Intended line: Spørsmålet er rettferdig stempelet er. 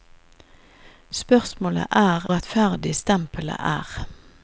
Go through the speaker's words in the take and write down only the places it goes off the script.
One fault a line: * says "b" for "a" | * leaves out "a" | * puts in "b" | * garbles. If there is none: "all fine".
all fine